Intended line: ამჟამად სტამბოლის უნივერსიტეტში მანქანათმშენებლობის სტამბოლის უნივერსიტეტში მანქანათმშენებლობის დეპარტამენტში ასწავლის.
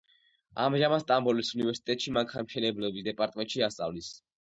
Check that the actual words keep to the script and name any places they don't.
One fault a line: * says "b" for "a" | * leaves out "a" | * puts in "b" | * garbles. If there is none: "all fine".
* leaves out "სტამბოლის უნივერსიტეტში მანქანათმშენებლობის"